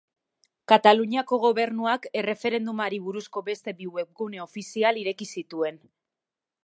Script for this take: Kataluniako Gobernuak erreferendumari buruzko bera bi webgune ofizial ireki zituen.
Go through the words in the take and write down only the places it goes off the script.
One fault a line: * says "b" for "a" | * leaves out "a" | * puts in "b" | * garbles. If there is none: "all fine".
* says "beste" for "bera"